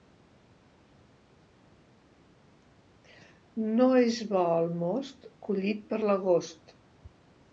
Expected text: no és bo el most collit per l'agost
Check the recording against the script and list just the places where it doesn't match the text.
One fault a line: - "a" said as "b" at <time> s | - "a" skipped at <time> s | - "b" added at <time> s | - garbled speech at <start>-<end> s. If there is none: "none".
none